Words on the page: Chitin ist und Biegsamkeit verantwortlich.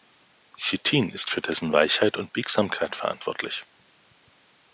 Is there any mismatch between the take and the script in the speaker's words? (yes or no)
yes